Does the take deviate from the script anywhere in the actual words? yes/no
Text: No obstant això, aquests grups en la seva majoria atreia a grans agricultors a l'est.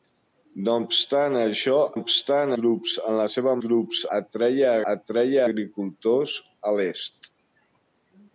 yes